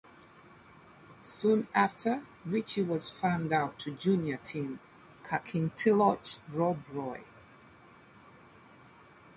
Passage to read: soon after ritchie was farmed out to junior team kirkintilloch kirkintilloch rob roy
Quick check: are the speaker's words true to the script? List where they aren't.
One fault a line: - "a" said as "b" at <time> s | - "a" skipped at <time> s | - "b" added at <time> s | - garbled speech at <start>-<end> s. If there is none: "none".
- "kirkintilloch" skipped at 6.4 s